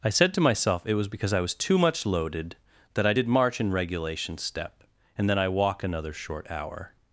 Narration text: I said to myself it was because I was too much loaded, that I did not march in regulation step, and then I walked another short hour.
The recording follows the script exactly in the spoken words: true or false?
false